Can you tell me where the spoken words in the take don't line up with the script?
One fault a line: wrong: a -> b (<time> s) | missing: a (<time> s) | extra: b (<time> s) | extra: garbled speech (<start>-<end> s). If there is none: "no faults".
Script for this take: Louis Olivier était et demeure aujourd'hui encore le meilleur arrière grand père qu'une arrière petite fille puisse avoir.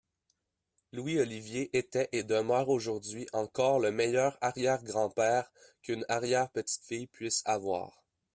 no faults